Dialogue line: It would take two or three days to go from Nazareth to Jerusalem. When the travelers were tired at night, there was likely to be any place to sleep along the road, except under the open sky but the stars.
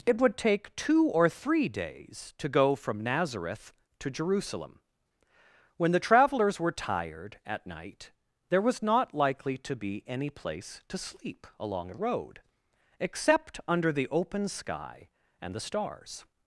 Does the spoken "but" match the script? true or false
false